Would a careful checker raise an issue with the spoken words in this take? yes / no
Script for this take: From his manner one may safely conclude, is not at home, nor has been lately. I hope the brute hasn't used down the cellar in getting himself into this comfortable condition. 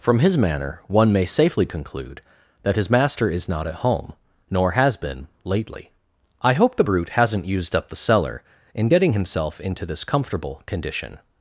yes